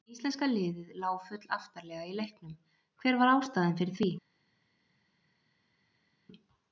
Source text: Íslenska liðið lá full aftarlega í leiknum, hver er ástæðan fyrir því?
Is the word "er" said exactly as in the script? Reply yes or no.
no